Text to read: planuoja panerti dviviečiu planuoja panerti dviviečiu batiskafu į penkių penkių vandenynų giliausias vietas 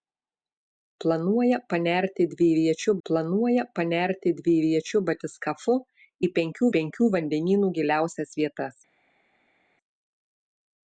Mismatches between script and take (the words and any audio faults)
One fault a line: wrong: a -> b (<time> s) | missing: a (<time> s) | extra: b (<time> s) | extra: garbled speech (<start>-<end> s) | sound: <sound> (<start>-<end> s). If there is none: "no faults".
no faults